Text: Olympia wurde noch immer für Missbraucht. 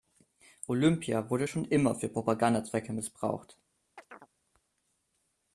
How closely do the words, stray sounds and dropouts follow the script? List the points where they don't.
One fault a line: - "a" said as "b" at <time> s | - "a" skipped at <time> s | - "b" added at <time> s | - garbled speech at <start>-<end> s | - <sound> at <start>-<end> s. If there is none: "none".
- "noch" said as "schon" at 1.4 s
- "Propagandazwecke" added at 2.1 s
- chirp at 4.0-4.3 s